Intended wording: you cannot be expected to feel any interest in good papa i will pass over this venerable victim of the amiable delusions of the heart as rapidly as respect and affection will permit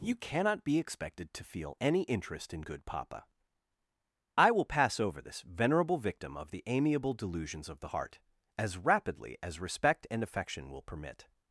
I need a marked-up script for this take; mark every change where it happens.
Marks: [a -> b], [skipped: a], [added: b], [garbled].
you cannot be expected to feel any interest in good papa i will pass over this venerable victim of the amiable delusions of the heart as rapidly as respect and affection will permit